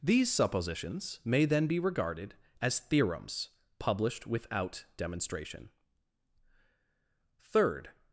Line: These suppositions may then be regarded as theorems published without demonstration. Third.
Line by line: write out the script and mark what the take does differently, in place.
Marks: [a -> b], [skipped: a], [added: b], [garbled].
These suppositions may then be regarded as theorems published without demonstration. Third.